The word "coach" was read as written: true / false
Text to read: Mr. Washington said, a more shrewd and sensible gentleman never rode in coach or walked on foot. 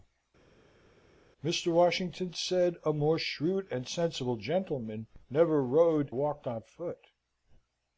false